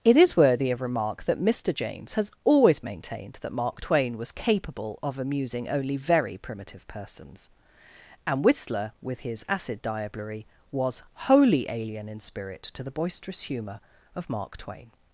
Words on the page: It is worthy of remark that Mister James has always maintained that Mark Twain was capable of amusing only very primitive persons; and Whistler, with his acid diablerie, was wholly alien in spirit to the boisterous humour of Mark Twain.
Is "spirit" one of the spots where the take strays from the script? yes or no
no